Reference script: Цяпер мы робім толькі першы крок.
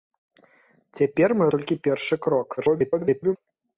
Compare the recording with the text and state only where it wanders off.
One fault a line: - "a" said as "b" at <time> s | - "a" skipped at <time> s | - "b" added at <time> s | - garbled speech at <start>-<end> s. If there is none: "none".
- "робім" skipped at 1.5 s
- garbled speech at 2.6-3.4 s